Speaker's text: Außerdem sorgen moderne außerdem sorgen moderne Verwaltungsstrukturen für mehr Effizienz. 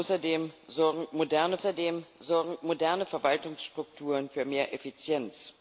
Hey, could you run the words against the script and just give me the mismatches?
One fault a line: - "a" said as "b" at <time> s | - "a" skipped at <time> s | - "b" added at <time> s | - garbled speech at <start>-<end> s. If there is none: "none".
none